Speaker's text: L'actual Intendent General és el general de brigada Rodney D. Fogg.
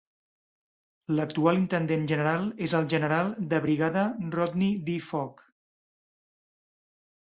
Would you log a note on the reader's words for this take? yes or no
no